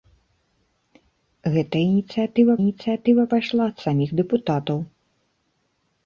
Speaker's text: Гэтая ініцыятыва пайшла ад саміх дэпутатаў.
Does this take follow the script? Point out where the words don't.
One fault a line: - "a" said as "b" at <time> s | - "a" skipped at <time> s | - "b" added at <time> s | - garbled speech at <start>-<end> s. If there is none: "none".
- "ініцыятыва" added at 2.6 s